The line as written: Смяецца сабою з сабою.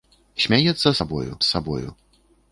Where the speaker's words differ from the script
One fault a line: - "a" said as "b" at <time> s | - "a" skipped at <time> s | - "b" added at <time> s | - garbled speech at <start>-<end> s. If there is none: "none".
none